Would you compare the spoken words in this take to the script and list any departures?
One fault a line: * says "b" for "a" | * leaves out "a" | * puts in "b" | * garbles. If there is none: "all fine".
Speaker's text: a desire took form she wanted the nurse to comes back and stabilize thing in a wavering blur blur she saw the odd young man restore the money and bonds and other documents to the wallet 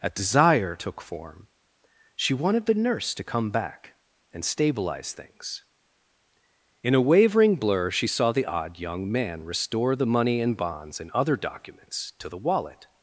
* says "come" for "comes"
* says "things" for "thing"
* leaves out "blur"